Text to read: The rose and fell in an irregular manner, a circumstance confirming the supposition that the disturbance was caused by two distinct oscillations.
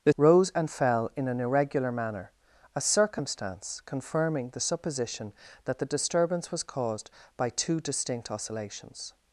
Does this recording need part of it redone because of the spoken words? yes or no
no